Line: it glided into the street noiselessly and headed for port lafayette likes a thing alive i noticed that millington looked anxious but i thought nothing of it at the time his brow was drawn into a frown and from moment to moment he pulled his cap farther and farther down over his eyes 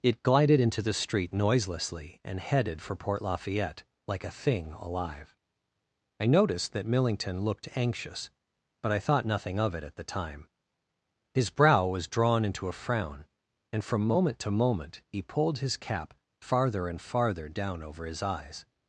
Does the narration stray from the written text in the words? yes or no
yes